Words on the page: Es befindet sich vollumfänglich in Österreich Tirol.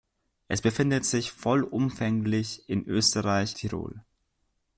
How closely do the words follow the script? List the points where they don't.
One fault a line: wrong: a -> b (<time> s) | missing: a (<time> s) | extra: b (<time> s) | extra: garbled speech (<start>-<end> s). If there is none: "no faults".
no faults